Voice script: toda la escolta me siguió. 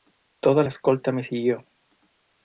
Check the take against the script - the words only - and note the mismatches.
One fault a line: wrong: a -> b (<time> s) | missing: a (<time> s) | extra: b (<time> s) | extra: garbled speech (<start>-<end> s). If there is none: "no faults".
no faults